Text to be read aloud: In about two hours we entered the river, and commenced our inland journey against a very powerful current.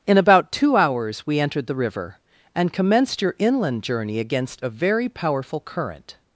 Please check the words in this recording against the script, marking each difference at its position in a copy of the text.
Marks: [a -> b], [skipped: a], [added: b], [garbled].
In about two hours we entered the river, and commenced [our -> your] inland journey against a very powerful current.